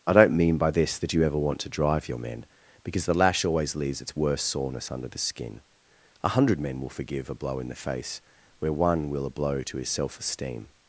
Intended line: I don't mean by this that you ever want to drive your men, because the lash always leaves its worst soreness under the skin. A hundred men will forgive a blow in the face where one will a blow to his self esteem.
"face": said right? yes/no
yes